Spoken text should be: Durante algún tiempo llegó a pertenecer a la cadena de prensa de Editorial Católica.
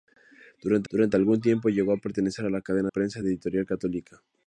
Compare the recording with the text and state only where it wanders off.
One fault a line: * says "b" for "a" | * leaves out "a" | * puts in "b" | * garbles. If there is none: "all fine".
* puts in "durante"
* leaves out "de"